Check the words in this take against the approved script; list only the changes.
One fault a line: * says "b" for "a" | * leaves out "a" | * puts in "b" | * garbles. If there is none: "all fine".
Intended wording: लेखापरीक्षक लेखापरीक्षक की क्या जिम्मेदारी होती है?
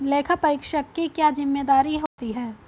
* leaves out "लेखापरीक्षक"